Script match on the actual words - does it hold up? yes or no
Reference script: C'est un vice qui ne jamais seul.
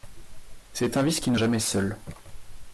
yes